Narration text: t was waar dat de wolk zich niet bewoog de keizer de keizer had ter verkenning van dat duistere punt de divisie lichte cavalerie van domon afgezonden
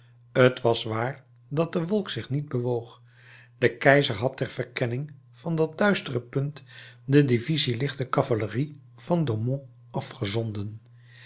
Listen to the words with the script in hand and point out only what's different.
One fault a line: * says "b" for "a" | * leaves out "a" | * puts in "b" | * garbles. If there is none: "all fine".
* leaves out "de keizer"